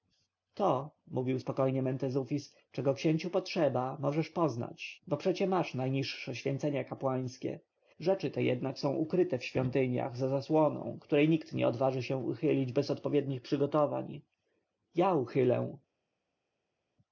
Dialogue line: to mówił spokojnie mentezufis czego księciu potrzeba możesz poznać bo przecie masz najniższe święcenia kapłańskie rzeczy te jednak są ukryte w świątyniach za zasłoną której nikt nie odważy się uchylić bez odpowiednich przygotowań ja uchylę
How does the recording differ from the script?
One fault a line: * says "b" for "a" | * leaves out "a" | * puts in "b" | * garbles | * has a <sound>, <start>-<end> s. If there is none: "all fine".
all fine